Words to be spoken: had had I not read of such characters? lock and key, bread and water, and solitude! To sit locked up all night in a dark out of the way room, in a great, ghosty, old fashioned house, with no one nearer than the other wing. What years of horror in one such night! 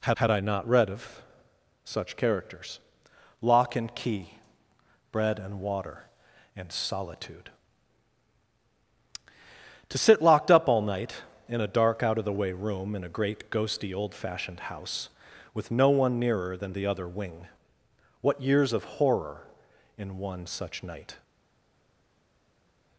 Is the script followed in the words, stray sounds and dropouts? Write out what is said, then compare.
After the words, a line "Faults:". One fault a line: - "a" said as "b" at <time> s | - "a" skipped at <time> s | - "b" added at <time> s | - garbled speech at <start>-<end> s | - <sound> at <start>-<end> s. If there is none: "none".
had had I not read of such characters? lock and key, bread and water, and solitude! To sit locked up all night in a dark out of the way room, in a great, ghosty, old fashioned house, with no one nearer than the other wing. What years of horror in one such night!
Faults:
none